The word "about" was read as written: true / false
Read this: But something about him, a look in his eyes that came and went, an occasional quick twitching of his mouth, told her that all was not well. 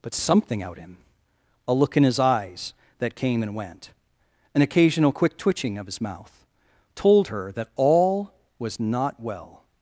false